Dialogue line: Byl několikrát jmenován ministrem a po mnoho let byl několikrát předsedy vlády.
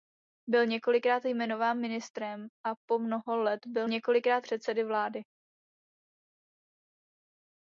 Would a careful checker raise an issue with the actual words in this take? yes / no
no